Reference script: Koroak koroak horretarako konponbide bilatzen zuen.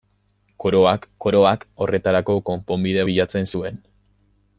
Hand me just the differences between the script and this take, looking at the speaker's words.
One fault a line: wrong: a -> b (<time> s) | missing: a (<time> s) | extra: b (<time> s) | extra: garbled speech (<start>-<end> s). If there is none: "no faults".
no faults